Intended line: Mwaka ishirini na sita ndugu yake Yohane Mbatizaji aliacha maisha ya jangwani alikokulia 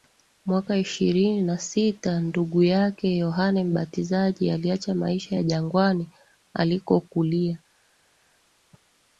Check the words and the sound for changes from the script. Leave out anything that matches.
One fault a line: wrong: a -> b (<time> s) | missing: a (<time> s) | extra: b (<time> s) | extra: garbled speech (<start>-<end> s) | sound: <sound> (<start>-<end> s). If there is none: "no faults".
no faults